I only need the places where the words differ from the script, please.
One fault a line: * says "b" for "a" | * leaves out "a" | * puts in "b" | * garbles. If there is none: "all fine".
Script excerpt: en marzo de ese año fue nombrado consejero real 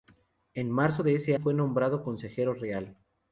* leaves out "año"